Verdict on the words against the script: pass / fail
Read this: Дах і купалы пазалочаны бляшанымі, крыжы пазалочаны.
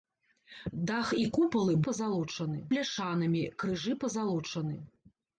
pass